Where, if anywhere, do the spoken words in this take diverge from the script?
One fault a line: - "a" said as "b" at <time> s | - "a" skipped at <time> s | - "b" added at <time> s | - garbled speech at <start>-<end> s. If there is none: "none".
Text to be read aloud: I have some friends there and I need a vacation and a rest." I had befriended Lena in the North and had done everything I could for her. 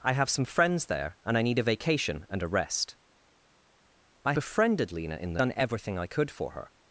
- "had" skipped at 4.3 s
- "North and had" skipped at 5.4 s